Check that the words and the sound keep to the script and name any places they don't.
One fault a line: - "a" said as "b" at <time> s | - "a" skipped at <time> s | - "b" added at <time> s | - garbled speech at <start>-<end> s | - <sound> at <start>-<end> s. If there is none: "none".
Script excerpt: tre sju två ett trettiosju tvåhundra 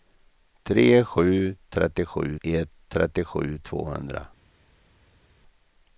- "två" said as "trettiosju" at 1.7 s